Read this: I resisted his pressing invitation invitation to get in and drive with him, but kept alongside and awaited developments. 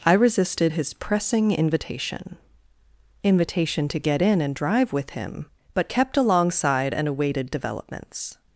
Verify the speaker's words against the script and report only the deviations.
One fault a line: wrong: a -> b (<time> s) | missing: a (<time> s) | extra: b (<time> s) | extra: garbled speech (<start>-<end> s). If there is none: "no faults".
no faults